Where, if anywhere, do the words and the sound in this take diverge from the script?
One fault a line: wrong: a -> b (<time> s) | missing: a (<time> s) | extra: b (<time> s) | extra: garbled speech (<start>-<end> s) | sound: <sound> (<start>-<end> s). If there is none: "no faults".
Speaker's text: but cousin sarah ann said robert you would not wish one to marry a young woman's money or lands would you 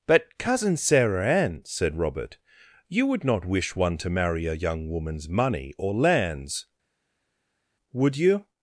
no faults